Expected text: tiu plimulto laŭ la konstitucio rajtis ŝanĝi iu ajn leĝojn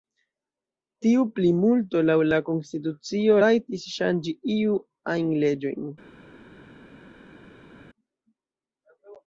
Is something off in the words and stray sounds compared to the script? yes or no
no